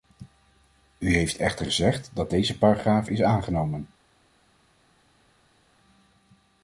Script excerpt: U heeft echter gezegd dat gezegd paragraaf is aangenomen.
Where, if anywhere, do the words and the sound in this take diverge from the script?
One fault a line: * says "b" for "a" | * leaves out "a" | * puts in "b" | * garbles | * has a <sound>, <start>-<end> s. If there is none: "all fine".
* says "deze" for "gezegd"